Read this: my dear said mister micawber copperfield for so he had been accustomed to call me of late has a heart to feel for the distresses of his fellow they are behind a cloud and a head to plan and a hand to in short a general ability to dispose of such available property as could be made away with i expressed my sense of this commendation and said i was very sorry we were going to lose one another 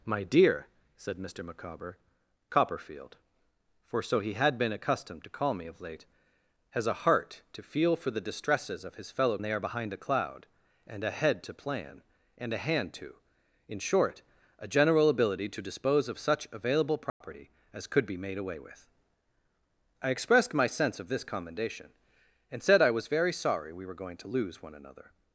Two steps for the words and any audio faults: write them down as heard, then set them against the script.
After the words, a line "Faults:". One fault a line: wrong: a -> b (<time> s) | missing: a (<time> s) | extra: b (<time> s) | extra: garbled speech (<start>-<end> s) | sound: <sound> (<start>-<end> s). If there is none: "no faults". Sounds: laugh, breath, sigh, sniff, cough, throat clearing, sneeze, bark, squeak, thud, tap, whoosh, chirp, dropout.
my dear said mister micawber copperfield for so he had been accustomed to call me of late has a heart to feel for the distresses of his fellow they are behind a cloud and a head to plan and a hand to in short a general ability to dispose of such available property as could be made away with i expressed my sense of this commendation and said i was very sorry we were going to lose one another
Faults:
sound: dropout (17.1-17.2 s)